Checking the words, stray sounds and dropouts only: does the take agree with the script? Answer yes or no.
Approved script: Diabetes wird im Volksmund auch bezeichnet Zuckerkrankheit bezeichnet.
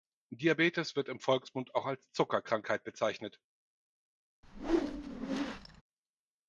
no